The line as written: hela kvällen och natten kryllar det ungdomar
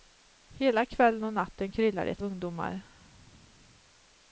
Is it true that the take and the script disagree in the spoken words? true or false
false